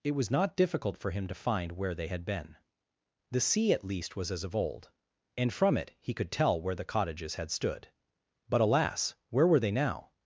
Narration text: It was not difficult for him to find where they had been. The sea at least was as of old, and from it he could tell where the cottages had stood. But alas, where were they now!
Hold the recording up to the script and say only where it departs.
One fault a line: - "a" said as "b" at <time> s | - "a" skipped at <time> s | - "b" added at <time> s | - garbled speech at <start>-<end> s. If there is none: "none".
none